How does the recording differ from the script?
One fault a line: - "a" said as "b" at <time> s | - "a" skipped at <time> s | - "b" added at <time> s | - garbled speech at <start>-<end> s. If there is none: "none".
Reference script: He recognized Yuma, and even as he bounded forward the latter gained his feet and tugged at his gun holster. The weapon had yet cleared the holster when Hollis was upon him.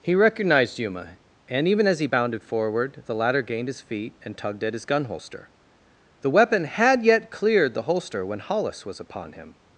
none